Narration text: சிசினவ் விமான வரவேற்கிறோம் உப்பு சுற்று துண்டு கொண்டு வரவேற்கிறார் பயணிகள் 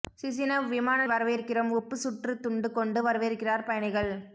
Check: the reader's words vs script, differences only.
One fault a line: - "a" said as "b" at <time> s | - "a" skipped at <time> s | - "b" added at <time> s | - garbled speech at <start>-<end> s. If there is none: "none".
none